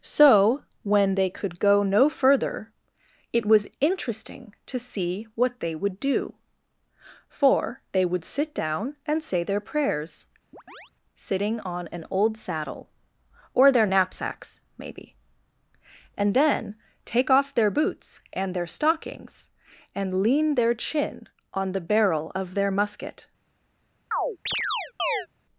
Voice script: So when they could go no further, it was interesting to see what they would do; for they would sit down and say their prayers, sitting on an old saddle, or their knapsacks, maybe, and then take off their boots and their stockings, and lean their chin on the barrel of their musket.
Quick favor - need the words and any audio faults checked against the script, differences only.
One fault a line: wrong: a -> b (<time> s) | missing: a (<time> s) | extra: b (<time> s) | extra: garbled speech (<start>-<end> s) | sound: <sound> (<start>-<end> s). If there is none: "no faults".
sound: chirp (10.5-10.9 s)
sound: chirp (24.1-25.3 s)